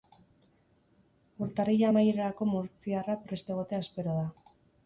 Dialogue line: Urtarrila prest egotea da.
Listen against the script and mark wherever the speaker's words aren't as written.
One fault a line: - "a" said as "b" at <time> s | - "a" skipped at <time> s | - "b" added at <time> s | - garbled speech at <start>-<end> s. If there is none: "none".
- "amaierarako murtziarra" added at 1.9 s
- "espero" added at 3.9 s